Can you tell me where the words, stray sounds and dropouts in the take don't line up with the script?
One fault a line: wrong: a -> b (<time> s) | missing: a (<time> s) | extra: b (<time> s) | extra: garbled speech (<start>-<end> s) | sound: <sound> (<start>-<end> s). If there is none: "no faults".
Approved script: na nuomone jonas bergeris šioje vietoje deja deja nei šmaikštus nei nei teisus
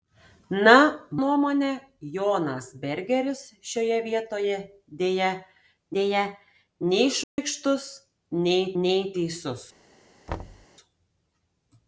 sound: dropout (7.2-7.4 s)
sound: thud (10.3-10.7 s)